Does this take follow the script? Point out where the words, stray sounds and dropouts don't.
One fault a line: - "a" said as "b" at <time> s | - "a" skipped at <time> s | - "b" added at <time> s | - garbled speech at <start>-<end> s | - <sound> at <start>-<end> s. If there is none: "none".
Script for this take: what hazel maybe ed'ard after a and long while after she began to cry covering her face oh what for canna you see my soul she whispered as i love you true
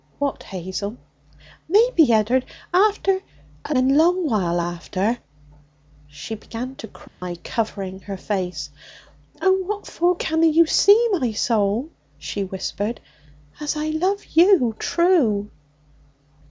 - dropout at 7.1-7.2 s